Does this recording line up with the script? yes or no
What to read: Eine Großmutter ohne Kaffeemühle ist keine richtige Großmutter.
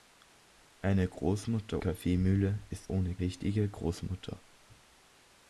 no